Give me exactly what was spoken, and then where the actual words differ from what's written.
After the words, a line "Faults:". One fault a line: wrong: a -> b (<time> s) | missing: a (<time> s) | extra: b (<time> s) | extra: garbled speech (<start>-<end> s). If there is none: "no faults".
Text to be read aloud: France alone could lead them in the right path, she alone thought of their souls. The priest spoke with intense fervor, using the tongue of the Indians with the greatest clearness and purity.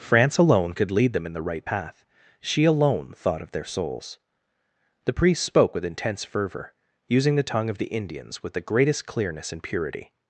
France alone could lead them in the right path, she alone thought of their souls. The priest spoke with intense fervor, using the tongue of the Indians with the greatest clearness and purity.
Faults:
no faults